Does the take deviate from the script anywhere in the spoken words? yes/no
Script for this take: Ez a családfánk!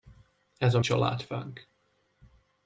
no